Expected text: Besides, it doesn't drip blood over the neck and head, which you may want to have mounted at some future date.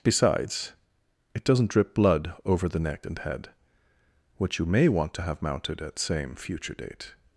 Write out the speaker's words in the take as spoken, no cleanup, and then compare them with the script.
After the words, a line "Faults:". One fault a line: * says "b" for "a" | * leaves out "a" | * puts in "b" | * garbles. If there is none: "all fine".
Besides, it doesn't drip blood over the neck and head, which you may want to have mounted at same future date.
Faults:
* says "same" for "some"